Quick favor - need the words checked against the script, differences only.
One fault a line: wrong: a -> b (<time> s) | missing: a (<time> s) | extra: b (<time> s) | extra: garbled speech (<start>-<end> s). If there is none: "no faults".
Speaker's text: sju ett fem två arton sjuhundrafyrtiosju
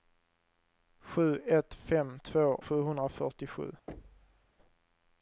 missing: arton (2.5 s)